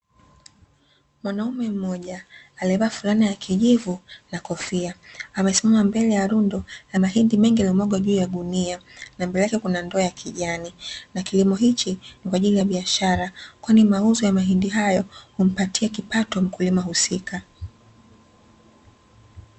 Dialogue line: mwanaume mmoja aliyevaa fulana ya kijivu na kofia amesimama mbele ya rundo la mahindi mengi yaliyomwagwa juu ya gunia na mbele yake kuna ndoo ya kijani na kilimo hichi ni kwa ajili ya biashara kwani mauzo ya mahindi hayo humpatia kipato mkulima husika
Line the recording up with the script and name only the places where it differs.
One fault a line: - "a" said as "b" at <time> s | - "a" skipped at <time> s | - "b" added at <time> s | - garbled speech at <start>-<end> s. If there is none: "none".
none